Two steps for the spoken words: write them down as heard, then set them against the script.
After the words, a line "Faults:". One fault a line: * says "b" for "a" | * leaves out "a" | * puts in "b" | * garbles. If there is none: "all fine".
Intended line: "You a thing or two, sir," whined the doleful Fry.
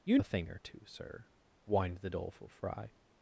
"You a thing or two, sir," whined the doleful Fry.
Faults:
all fine